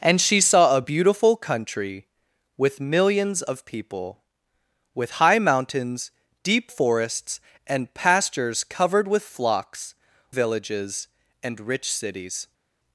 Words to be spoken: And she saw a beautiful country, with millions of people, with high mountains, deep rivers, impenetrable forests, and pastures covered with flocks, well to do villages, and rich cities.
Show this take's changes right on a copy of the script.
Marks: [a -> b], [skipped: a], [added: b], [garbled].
And she saw a beautiful country, with millions of people, with high mountains, deep [skipped: rivers, impenetrable] forests, and pastures covered with flocks, [skipped: well to do] villages, and rich cities.